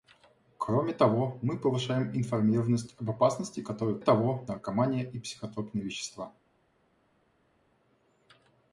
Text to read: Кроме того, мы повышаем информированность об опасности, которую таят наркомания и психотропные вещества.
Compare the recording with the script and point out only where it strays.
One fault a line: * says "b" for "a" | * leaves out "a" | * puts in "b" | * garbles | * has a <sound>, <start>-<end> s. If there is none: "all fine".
* says "того" for "таят"